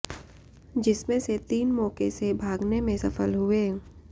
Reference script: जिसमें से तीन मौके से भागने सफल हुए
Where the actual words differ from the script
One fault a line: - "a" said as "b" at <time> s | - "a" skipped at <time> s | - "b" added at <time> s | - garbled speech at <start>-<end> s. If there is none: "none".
- "में" added at 2.8 s